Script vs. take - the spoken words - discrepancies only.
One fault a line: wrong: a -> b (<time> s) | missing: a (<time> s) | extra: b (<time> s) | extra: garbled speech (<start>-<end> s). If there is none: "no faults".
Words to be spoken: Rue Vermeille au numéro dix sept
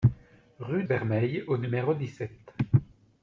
no faults